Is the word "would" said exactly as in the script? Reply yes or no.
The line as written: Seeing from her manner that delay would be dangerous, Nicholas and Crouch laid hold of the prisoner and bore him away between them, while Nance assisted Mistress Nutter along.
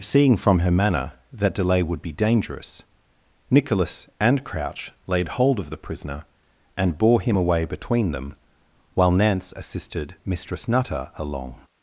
yes